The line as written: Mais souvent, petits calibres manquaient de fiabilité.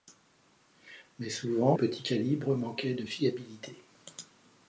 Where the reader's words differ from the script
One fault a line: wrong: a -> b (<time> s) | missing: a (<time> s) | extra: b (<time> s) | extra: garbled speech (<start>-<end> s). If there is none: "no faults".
no faults